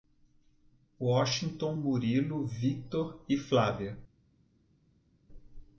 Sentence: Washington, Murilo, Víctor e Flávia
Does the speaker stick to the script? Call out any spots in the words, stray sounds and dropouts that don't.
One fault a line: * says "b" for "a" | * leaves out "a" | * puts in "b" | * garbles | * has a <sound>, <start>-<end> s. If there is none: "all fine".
all fine